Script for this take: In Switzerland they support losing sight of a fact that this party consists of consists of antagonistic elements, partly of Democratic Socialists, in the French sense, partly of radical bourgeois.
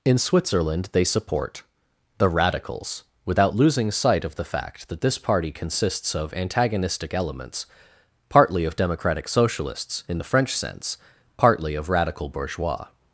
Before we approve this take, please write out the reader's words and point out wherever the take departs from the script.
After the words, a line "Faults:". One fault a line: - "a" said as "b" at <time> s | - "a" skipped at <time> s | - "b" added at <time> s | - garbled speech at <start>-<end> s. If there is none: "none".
In Switzerland they support the Radicals, without losing sight of the fact that this party consists of antagonistic elements, partly of Democratic Socialists, in the French sense, partly of radical bourgeois.
Faults:
- "the Radicals without" added at 2.2 s
- "a" said as "the" at 4.3 s
- "consists of" skipped at 6.3 s